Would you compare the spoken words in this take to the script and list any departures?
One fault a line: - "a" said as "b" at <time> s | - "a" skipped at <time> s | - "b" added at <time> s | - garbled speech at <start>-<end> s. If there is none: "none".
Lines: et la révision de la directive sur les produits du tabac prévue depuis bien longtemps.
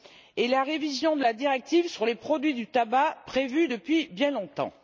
none